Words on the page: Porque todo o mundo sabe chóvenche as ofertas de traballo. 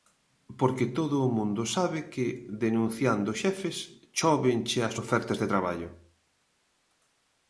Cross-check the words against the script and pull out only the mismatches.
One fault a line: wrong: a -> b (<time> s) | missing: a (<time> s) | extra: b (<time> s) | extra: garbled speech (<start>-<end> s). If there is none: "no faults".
extra: que denunciando xefes (2.1 s)